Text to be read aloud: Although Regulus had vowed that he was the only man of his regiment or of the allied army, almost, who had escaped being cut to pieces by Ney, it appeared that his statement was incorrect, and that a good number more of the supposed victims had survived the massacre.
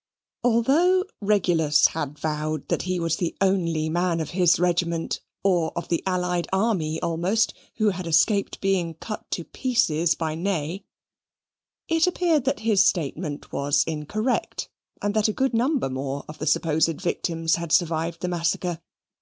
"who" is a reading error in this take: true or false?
false